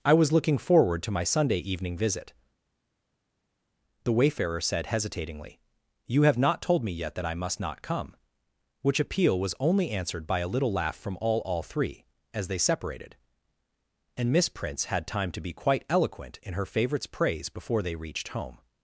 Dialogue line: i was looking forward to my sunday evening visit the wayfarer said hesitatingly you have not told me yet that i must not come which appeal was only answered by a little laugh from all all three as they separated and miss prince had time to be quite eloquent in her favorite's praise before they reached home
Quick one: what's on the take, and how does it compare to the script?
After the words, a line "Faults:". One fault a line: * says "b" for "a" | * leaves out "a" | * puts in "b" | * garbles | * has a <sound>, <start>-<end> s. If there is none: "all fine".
i was looking forward to my sunday evening visit the wayfarer said hesitatingly you have not told me yet that i must not come which appeal was only answered by a little laugh from all all three as they separated and miss prince had time to be quite eloquent in her favorite's praise before they reached home
Faults:
all fine